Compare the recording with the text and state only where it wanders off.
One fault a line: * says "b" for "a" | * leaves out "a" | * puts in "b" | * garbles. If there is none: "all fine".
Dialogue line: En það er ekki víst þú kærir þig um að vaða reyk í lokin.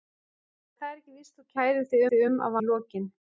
* puts in "þig"
* leaves out "vaða reyk"